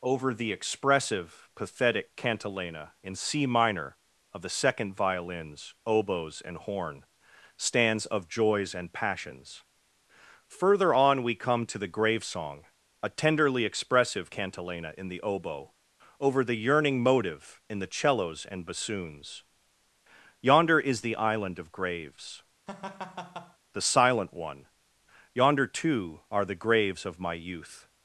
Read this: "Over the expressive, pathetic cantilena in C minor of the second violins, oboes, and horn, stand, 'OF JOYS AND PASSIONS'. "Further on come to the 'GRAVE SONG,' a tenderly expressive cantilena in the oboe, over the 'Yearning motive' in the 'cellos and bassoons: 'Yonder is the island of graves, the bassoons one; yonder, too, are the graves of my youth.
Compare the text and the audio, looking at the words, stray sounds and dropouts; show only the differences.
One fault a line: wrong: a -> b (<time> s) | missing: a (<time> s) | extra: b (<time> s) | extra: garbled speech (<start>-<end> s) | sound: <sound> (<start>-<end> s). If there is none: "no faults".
wrong: stand -> stands (7.5 s)
extra: we (11.2 s)
sound: laugh (22.7-23.6 s)
wrong: bassoons -> silent (23.8 s)